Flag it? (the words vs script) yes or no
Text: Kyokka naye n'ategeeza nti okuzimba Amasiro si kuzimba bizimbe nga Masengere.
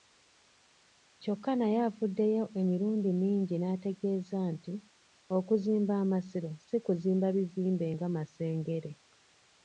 yes